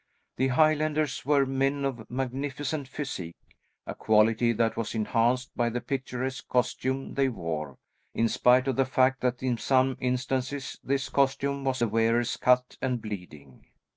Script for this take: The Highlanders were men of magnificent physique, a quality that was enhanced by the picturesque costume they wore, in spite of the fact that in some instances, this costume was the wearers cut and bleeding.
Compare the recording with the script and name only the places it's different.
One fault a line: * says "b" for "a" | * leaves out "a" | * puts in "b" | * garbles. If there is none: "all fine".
all fine